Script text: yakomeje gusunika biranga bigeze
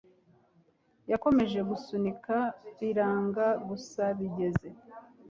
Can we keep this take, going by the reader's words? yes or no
no